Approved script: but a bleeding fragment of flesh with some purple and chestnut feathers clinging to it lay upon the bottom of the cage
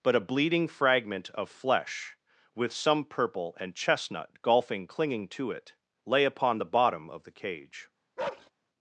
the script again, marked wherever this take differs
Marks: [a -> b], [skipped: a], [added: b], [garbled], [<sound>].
but a bleeding fragment of flesh with some purple and chestnut [feathers -> golfing] clinging to it lay upon the bottom of the cage [bark]